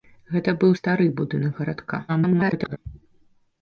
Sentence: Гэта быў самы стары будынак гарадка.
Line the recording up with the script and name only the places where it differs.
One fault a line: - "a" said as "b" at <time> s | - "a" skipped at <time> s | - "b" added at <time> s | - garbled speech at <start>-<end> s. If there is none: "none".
- "самы" skipped at 0.7 s
- garbled speech at 2.1-2.8 s